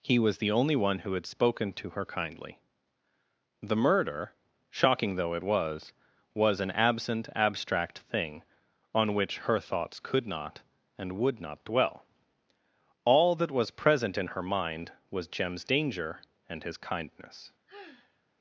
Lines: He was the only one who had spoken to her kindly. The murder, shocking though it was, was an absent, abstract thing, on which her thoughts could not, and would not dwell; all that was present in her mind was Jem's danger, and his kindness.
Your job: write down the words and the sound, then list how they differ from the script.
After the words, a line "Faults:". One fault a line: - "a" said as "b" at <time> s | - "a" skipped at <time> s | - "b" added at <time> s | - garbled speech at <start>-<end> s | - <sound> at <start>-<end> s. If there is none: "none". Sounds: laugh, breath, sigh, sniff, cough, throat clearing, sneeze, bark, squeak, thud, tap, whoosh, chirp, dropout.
He was the only one who had spoken to her kindly. The murder, shocking though it was, was an absent, abstract thing, on which her thoughts could not, and would not dwell; all that was present in her mind was Jem's danger, and his kindness.
Faults:
- sigh at 17.7-18.2 s